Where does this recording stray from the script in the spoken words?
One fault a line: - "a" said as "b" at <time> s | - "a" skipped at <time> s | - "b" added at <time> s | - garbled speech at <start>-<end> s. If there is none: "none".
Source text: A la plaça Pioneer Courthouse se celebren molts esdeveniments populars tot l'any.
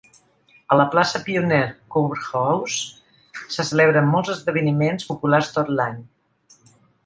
none